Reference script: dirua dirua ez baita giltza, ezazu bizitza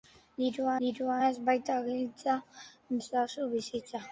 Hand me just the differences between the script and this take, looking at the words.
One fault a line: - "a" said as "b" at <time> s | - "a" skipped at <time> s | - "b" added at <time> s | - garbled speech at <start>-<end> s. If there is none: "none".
none